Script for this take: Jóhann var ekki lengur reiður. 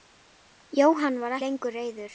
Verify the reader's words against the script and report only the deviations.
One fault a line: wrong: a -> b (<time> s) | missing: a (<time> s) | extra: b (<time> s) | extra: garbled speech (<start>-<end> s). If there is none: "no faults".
missing: ekki (1.4 s)